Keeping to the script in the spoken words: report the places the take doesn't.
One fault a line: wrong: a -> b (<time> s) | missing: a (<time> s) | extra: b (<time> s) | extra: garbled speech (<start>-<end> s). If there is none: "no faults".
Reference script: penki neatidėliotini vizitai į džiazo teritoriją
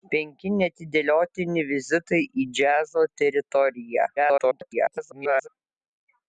extra: garbled speech (4.2-5.5 s)